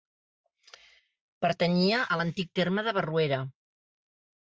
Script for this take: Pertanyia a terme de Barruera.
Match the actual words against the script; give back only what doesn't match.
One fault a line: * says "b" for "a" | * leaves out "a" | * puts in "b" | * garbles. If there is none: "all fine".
* puts in "l'antic"